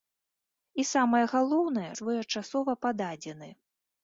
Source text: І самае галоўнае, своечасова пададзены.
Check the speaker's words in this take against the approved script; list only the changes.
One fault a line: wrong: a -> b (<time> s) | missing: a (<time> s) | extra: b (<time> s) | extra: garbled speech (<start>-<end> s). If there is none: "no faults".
no faults